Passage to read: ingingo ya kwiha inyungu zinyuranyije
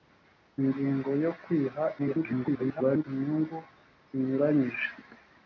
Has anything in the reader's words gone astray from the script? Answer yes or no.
yes